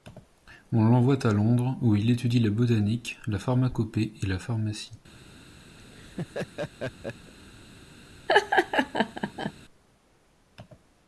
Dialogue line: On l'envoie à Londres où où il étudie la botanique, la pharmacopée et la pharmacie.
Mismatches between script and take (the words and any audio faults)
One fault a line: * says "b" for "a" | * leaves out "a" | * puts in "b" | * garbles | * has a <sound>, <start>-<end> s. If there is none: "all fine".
* leaves out "où"
* has a laugh, 5.8-7.3 s
* has a laugh, 8.3-9.5 s